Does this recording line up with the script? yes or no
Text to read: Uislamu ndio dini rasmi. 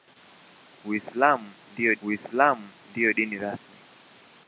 no